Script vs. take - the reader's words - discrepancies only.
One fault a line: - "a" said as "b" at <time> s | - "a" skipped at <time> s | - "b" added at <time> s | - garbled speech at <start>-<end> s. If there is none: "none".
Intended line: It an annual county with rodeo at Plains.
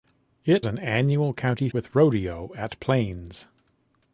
none